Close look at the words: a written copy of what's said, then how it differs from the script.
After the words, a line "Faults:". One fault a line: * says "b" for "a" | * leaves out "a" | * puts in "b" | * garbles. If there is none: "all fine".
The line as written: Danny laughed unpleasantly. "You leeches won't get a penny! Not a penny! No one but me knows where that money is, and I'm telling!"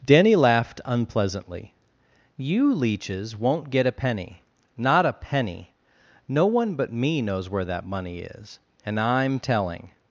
Danny laughed unpleasantly. "You leeches won't get a penny! Not a penny! No one but me knows where that money is, and I'm telling!"
Faults:
all fine